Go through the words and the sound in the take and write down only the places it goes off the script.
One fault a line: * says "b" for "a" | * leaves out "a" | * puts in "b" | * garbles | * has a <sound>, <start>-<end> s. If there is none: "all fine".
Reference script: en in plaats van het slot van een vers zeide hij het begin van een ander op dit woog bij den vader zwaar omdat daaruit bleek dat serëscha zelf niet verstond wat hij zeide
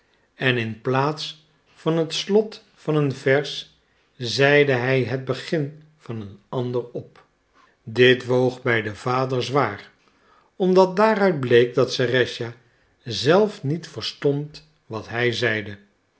all fine